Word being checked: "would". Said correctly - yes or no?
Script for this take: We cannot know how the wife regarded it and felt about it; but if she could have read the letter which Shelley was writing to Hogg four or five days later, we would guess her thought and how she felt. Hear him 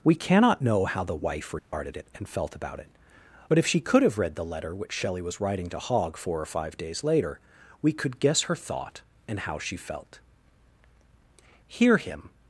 no